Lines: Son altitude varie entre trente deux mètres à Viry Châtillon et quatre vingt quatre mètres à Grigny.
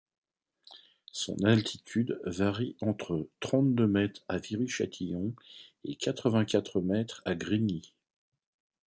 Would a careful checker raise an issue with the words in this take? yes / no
no